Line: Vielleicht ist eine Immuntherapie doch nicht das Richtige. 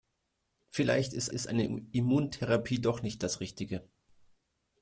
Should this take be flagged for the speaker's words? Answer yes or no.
yes